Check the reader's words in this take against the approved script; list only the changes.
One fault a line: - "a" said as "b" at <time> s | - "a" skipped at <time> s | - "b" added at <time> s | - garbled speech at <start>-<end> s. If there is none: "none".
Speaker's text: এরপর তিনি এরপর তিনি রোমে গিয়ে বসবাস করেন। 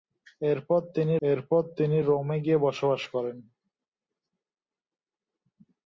none